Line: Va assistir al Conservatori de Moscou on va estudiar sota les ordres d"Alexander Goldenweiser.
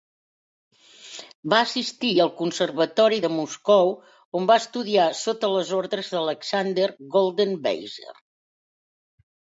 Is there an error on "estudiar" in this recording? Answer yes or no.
no